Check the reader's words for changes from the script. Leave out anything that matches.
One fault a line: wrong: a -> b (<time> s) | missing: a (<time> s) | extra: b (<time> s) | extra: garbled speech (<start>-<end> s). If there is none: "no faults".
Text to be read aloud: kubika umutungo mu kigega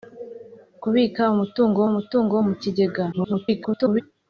extra: umutungo (1.9 s)
extra: garbled speech (3.1-4.0 s)